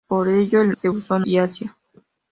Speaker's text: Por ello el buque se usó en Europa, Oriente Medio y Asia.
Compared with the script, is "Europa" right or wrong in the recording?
wrong